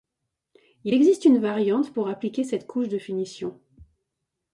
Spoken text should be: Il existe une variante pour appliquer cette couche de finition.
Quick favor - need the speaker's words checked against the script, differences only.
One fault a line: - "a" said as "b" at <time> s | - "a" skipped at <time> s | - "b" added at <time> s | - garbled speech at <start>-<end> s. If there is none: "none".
none